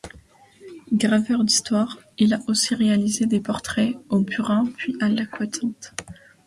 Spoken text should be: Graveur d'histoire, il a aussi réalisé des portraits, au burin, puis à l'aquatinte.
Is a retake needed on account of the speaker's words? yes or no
no